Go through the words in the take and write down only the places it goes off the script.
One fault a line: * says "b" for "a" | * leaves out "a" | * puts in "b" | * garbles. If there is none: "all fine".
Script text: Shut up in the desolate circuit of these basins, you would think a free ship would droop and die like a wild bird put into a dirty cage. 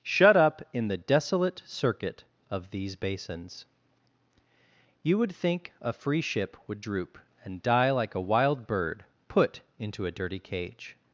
all fine